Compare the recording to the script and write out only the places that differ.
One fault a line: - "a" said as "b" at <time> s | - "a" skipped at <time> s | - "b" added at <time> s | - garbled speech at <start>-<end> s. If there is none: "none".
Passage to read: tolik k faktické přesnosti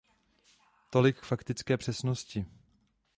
none